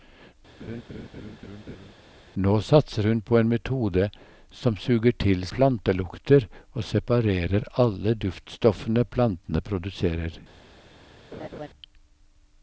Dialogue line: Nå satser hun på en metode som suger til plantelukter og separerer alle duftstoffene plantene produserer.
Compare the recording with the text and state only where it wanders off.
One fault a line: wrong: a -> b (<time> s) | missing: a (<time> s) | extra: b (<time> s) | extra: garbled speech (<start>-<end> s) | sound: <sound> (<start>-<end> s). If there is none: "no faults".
sound: laugh (0.6-1.9 s)
sound: laugh (11.3-11.7 s)